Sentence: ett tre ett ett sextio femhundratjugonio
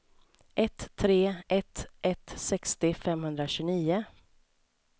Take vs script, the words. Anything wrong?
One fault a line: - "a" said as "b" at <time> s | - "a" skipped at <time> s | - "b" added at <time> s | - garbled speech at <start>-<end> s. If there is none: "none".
none